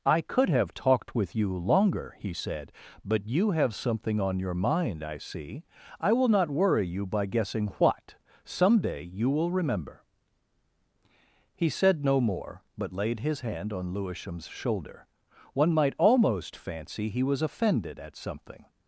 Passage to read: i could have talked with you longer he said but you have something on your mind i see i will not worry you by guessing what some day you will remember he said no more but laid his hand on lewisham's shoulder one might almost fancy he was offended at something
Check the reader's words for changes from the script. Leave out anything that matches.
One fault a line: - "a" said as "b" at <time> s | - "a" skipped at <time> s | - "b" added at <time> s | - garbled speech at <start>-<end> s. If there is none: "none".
none